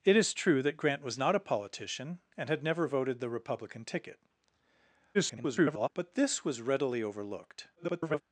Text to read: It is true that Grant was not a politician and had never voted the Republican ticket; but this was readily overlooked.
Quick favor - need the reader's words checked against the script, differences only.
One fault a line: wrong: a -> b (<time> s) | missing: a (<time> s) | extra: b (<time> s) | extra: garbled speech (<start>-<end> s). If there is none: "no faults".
extra: garbled speech (5.1-5.9 s)
extra: garbled speech (7.8-8.2 s)